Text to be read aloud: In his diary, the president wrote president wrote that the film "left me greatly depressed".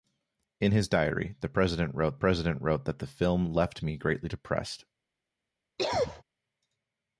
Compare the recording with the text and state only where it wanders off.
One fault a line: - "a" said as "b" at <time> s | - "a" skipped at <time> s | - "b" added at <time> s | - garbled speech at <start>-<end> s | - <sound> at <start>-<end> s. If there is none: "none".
- cough at 5.8-6.2 s